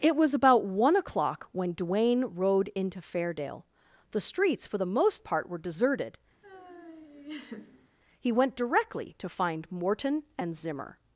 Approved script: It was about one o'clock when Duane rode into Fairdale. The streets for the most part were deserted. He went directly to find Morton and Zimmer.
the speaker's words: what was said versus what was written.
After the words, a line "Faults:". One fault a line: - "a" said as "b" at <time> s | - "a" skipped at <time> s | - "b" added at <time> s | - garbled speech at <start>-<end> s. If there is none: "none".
It was about one o'clock when Duane rode into Fairdale. The streets for the most part were deserted. He went directly to find Morton and Zimmer.
Faults:
none